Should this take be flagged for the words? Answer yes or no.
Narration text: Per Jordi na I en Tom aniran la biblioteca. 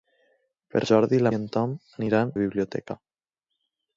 no